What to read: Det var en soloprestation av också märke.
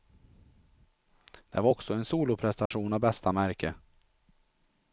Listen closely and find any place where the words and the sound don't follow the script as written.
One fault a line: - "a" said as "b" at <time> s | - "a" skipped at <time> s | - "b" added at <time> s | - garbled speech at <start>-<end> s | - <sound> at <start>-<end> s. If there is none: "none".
- "också" added at 1.7 s
- dropout at 2.7-2.7 s
- "också" said as "bästa" at 3.0 s